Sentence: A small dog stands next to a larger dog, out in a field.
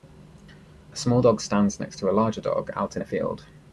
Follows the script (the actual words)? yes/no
yes